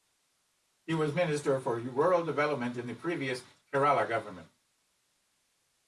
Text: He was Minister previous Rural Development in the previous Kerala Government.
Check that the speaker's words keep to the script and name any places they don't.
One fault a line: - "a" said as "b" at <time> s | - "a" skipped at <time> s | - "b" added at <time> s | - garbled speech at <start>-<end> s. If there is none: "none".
- "previous" said as "for" at 1.6 s